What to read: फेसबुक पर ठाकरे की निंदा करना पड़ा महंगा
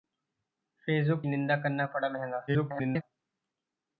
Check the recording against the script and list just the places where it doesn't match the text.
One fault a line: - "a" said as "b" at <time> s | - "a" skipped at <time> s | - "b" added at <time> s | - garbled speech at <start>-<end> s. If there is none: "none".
- "पर ठाकरे की" skipped at 1.2 s
- garbled speech at 2.5-3.0 s